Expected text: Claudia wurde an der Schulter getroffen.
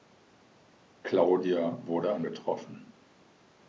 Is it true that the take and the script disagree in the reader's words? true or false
true